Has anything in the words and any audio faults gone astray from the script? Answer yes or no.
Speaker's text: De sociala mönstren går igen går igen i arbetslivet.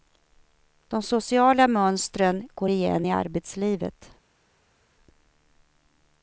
yes